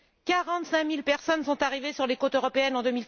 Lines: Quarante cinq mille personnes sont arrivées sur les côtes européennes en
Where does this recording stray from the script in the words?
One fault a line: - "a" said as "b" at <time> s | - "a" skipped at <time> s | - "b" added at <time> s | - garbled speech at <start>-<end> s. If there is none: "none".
none